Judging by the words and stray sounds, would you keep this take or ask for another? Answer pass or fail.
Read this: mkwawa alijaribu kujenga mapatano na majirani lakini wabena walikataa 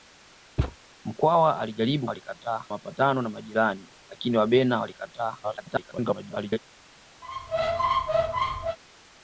fail